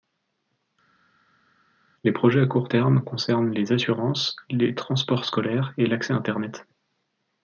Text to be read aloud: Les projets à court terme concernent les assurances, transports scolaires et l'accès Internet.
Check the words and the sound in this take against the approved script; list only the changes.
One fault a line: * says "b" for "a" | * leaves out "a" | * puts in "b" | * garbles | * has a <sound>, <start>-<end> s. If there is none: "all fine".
* puts in "les"